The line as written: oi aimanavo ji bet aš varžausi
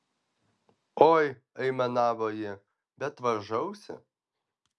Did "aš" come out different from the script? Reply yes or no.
yes